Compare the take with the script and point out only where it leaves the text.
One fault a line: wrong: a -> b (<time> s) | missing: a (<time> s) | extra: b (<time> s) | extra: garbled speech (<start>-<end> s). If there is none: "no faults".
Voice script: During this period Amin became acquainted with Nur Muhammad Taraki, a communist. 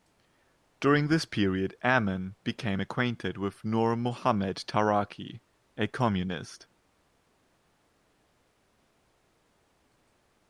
no faults